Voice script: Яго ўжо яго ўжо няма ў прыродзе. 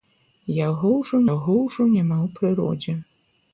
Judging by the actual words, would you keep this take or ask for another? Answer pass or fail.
pass